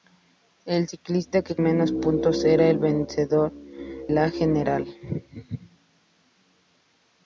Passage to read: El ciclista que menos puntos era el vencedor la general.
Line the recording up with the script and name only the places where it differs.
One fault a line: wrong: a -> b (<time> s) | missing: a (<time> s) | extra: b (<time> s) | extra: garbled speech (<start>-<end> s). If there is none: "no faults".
no faults